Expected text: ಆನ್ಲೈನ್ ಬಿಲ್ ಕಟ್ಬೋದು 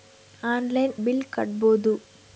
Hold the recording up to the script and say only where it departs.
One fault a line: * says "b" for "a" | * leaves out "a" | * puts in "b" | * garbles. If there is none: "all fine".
all fine